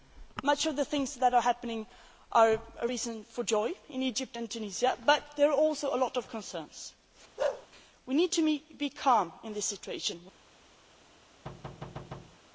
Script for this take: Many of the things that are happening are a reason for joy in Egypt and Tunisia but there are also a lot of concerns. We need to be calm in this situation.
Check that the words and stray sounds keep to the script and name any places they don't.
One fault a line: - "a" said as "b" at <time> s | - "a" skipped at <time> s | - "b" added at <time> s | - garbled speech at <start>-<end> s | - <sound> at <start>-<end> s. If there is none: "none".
- bark at 7.4-7.7 s
- thud at 11.4-12.4 s